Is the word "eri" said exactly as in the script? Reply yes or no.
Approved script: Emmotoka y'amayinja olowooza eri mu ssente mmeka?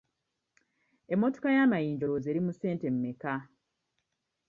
yes